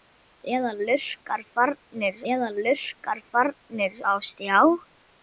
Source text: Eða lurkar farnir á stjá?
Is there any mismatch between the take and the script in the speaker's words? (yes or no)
yes